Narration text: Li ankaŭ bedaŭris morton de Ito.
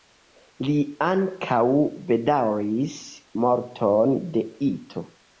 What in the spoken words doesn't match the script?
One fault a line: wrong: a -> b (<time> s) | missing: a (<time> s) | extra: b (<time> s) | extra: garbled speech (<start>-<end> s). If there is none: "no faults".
no faults